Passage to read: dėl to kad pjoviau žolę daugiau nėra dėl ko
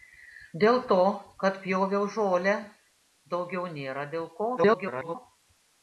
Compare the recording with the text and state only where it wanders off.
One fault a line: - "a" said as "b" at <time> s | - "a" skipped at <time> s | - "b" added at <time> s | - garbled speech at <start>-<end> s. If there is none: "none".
- garbled speech at 4.6-5.2 s